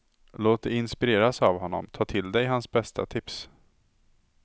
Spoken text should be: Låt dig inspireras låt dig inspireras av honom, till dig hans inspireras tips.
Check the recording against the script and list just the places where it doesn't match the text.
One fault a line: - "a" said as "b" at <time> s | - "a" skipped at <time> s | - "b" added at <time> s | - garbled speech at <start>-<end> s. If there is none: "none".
- "låt dig inspireras" skipped at 1.4 s
- "ta" added at 1.9 s
- "inspireras" said as "bästa" at 2.7 s